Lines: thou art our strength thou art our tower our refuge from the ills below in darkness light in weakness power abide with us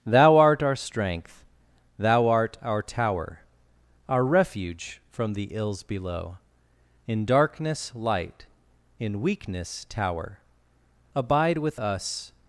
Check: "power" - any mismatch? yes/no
yes